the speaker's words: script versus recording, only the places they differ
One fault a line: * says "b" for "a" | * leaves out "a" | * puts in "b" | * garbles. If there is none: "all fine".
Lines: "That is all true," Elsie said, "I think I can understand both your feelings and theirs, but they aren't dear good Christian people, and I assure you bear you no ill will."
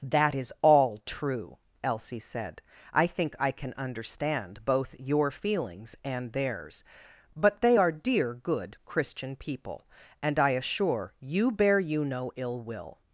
* says "are" for "aren't"